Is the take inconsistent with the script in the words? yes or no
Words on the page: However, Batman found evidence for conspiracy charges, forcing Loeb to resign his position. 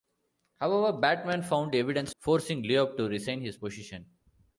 yes